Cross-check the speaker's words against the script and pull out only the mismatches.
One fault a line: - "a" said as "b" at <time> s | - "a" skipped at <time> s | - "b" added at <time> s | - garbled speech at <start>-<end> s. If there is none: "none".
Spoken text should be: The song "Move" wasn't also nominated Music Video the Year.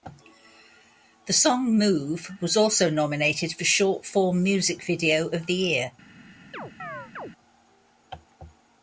- "wasn't" said as "was" at 2.4 s
- "for Short Form" added at 3.5 s
- "of" added at 5.3 s